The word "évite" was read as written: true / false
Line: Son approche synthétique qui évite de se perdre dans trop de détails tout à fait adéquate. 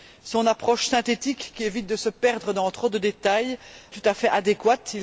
true